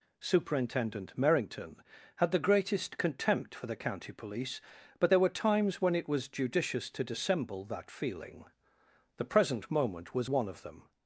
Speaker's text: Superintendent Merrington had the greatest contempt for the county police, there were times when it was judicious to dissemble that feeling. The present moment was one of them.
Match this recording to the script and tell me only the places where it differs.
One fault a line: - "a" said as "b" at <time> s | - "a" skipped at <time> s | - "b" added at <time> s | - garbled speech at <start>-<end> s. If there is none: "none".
- "but" added at 5.0 s